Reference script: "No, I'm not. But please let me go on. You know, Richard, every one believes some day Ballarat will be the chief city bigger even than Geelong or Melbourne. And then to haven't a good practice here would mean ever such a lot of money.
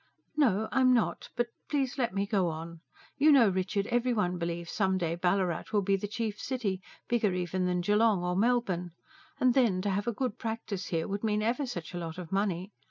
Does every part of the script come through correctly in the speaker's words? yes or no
no